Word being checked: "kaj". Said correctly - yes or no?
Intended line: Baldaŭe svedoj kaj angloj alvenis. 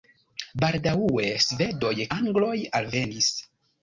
no